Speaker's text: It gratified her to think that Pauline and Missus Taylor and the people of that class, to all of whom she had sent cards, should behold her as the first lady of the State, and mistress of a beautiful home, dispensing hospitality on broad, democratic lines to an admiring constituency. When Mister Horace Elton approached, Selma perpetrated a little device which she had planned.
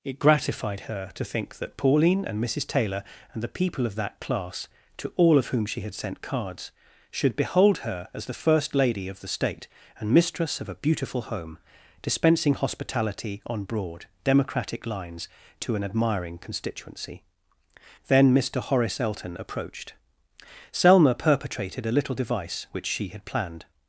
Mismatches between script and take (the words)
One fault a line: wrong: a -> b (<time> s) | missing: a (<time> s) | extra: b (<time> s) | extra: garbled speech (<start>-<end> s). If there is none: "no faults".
wrong: When -> Then (18.1 s)